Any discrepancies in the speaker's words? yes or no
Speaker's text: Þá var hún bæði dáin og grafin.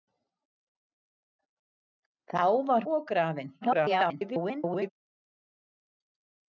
yes